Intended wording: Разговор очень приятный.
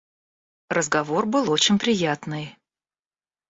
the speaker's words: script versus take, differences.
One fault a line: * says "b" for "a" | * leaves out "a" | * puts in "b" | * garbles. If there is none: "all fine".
* puts in "был"